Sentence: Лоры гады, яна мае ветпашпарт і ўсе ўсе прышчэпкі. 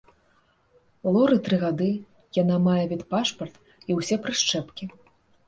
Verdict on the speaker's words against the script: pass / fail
fail